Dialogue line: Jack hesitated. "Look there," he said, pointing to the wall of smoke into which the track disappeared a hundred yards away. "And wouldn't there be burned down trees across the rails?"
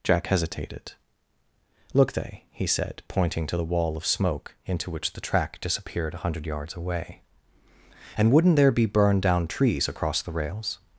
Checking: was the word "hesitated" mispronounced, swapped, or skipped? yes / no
no